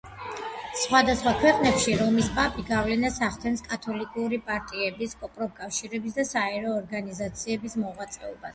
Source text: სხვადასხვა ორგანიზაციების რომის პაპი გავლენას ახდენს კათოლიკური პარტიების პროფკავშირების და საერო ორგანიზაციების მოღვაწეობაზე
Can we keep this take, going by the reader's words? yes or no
no